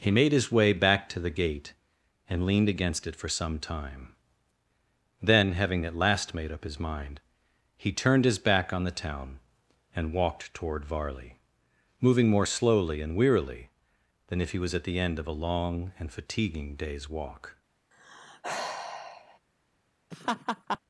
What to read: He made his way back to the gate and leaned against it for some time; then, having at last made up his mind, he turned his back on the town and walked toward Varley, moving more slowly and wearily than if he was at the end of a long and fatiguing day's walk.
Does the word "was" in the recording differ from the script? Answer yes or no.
no